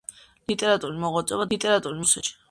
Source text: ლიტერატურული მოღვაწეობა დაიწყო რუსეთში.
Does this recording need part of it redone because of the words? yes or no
yes